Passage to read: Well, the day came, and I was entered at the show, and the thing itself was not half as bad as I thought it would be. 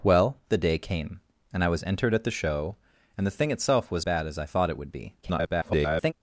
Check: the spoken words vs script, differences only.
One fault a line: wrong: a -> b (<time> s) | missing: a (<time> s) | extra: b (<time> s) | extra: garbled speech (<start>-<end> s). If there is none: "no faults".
missing: not half as (4.0 s)
extra: garbled speech (5.2-6.1 s)